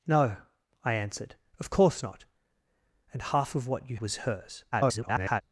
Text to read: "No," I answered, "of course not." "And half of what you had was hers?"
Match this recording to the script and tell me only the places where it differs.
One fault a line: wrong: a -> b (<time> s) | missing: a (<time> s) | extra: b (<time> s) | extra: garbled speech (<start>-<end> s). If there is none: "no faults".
missing: had (4.0 s)
extra: garbled speech (4.7-5.4 s)